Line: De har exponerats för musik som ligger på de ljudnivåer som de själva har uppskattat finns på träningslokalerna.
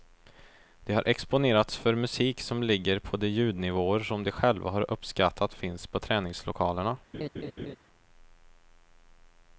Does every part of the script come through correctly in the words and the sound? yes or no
no